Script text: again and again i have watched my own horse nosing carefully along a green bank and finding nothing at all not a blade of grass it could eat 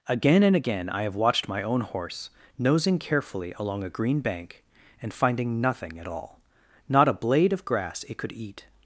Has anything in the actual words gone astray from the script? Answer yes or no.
no